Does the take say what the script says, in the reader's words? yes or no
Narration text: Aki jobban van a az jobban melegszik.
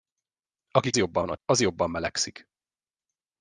yes